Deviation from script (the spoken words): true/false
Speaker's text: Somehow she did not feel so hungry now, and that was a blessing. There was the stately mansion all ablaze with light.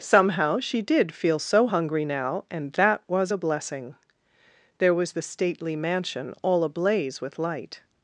true